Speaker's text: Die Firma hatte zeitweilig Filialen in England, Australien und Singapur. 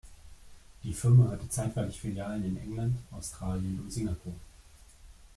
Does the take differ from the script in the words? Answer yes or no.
no